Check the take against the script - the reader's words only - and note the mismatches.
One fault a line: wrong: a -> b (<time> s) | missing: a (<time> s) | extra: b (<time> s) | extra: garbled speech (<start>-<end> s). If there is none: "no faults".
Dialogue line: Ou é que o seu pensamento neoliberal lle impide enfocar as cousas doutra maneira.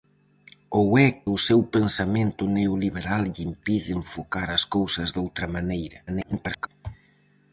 missing: que (1.1 s)
extra: garbled speech (6.1-6.7 s)